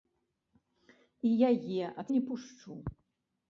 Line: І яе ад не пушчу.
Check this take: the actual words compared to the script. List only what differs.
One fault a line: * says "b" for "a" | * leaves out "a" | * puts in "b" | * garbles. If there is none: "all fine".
all fine